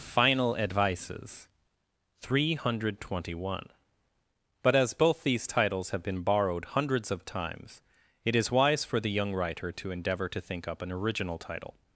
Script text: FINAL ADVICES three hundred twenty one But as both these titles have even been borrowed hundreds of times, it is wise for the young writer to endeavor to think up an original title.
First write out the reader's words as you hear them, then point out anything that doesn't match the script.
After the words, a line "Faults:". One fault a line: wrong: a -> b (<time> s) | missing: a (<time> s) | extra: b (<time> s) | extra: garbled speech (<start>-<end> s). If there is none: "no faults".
FINAL ADVICES three hundred twenty one But as both these titles have been borrowed hundreds of times, it is wise for the young writer to endeavor to think up an original title.
Faults:
missing: even (6.0 s)